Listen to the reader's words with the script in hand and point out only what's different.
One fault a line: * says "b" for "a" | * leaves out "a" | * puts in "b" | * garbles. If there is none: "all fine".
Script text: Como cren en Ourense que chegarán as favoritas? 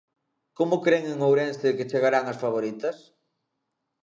all fine